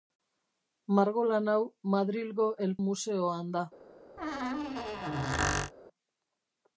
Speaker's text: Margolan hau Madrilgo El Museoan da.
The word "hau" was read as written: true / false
true